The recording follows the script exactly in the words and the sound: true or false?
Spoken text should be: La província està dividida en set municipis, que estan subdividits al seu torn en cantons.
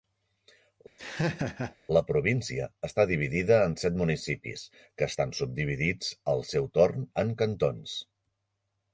false